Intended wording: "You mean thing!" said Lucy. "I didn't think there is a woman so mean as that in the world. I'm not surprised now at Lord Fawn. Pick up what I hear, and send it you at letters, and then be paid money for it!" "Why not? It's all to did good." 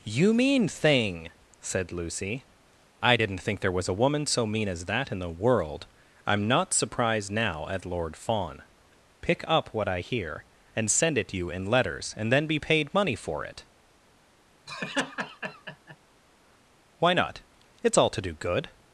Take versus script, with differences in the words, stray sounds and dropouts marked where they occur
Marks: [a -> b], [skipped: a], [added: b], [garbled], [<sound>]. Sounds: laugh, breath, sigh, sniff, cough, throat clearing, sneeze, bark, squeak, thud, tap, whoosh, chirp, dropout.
"You mean thing!" said Lucy. "I didn't think there [is -> was] a woman so mean as that in the world. I'm not surprised now at Lord Fawn. Pick up what I hear, and send it you [at -> in] letters, and then be paid money for it!" [laugh] "Why not? It's all to [did -> do] good."